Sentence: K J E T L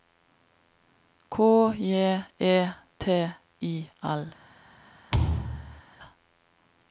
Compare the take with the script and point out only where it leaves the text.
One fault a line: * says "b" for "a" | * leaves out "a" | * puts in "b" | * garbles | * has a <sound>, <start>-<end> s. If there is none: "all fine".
* puts in "I"
* has a thud, 5.1-5.8 s